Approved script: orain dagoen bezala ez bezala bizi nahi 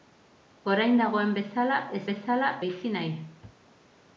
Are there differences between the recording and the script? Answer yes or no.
no